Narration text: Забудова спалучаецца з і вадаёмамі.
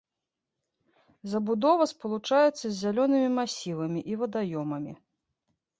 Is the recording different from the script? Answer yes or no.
yes